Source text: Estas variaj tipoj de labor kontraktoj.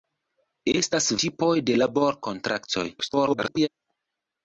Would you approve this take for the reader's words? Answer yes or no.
no